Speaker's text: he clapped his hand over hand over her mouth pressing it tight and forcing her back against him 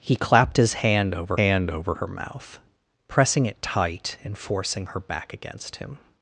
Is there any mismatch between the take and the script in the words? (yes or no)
no